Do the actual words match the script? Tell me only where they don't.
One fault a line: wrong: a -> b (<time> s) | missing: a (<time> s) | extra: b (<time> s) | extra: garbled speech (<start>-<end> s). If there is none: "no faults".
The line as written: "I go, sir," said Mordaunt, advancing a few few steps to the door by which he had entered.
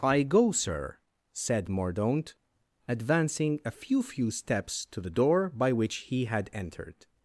no faults